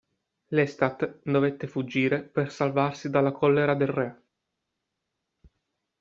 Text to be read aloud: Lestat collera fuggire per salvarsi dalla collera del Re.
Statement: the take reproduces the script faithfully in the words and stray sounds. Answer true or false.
false